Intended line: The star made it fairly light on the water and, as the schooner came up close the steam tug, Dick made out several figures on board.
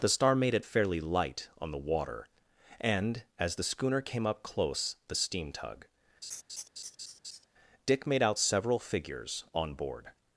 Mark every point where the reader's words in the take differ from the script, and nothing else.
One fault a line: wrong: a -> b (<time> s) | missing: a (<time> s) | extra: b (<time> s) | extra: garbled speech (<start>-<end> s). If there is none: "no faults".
no faults